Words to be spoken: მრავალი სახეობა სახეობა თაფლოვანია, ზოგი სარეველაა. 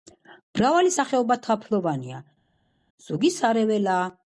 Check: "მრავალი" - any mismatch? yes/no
no